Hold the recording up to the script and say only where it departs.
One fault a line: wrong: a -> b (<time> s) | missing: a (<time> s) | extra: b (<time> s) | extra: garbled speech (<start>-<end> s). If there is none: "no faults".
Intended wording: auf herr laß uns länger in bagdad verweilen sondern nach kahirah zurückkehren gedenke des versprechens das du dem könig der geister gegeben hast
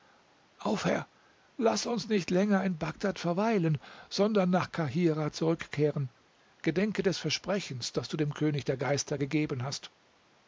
extra: nicht (2.1 s)